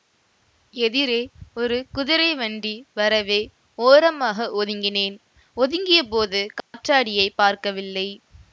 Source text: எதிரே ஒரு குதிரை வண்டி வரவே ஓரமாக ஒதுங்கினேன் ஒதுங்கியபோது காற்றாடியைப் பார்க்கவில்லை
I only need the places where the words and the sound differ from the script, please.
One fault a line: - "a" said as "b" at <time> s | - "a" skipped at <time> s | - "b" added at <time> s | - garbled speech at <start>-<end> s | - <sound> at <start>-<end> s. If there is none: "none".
- dropout at 6.6-6.7 s